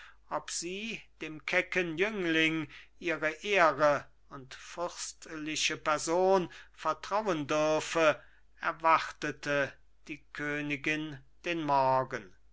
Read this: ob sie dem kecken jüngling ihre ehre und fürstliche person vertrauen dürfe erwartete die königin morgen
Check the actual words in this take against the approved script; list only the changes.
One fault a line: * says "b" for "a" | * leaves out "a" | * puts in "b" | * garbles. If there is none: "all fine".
* puts in "den"